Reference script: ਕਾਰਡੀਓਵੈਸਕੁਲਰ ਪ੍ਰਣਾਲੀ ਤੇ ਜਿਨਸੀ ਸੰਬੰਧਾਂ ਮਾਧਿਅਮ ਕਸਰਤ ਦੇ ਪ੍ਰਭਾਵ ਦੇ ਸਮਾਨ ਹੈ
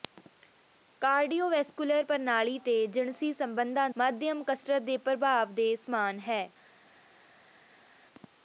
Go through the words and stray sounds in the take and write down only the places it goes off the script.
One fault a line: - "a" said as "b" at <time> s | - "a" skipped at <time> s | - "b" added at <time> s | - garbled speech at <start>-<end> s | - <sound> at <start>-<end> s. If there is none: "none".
none